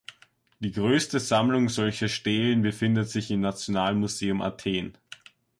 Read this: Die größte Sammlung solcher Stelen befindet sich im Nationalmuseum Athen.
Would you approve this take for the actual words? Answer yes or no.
yes